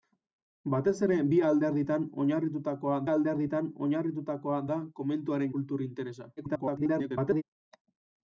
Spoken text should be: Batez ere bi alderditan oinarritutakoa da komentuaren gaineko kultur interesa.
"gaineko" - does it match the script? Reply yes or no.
no